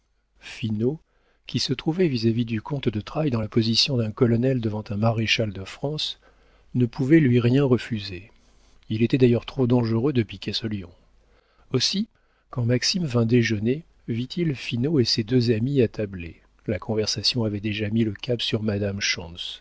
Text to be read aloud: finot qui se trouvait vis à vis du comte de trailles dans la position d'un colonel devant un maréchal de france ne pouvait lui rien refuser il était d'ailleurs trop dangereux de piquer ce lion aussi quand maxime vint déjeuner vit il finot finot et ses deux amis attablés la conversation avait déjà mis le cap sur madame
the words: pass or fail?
fail